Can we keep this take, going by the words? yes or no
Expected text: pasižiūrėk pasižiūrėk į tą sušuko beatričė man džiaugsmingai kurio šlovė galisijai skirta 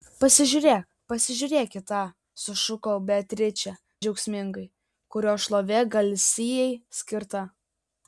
no